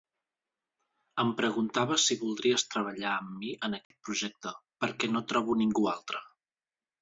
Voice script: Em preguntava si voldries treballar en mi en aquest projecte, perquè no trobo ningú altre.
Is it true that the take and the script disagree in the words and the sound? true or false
true